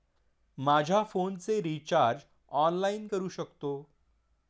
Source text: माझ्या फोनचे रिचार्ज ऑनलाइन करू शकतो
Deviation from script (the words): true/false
false